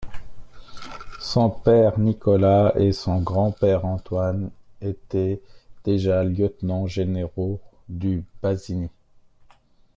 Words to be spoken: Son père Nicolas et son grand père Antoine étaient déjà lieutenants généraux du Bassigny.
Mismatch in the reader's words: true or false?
false